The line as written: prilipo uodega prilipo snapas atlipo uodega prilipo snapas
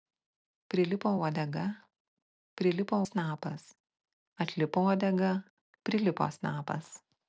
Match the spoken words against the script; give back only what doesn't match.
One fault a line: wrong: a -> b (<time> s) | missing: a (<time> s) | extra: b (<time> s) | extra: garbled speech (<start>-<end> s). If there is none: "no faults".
no faults